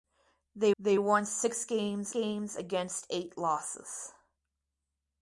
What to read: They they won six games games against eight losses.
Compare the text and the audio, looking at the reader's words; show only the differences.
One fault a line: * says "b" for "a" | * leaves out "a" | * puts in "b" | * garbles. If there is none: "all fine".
all fine